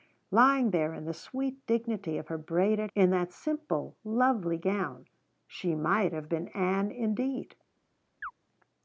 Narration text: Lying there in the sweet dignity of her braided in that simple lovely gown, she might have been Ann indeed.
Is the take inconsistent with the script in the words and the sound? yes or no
yes